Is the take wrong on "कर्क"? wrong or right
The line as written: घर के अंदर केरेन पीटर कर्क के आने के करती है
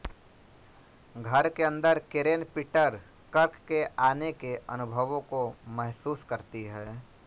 right